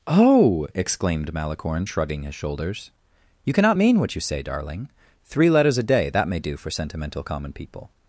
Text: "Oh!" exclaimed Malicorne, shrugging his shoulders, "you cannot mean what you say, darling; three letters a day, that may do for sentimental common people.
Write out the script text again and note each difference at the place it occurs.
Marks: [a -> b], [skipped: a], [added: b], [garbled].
"Oh!" exclaimed Malicorne, shrugging his shoulders, "you cannot mean what you say, darling; three letters a day, that may do for sentimental common people.